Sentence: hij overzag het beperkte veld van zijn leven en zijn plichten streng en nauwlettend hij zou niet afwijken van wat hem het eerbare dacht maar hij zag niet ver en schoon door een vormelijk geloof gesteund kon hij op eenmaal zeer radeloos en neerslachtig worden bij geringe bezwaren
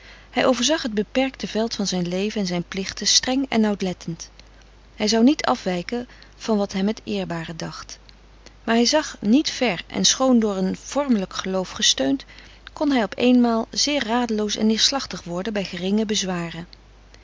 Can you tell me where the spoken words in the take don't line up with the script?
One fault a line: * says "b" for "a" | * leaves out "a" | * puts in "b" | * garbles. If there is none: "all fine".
all fine